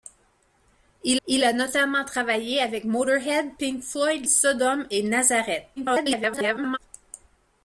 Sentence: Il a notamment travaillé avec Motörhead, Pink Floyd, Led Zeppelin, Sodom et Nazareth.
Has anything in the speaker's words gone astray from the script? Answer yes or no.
yes